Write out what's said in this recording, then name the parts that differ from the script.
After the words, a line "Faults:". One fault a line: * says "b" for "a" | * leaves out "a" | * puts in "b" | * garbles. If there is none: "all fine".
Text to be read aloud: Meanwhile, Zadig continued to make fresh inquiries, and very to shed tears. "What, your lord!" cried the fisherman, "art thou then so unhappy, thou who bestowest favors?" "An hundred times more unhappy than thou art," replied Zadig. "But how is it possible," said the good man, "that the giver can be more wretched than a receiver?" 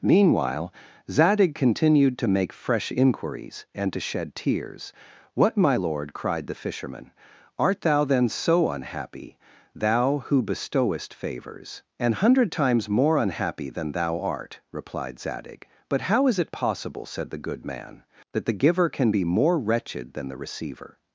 Meanwhile, Zadig continued to make fresh inquiries, and to shed tears. "What, my lord!" cried the fisherman, "art thou then so unhappy, thou who bestowest favors?" "An hundred times more unhappy than thou art," replied Zadig. "But how is it possible," said the good man, "that the giver can be more wretched than the receiver?"
Faults:
* leaves out "very"
* says "my" for "your"
* says "the" for "a"